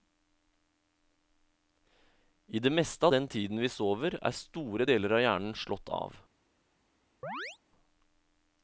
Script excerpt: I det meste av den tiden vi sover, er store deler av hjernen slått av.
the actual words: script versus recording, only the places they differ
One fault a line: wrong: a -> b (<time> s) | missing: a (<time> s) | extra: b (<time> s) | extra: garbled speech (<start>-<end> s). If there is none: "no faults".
no faults